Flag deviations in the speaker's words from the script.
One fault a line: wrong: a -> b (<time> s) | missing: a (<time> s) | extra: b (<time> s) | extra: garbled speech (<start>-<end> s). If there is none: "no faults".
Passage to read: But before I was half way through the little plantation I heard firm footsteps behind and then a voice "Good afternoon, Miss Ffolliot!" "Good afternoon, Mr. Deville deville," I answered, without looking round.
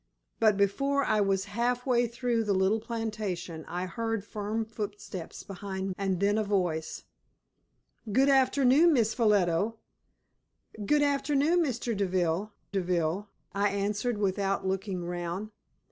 no faults